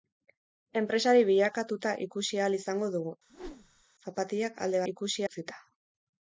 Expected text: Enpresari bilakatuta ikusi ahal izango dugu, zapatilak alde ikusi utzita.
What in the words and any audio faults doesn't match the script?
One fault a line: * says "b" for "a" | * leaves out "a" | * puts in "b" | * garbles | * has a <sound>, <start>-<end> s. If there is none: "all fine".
* has a whoosh, 3.3-3.8 s